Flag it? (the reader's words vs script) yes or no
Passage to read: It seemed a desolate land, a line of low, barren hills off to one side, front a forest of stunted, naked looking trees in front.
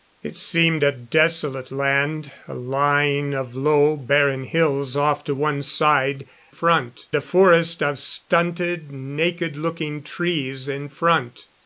no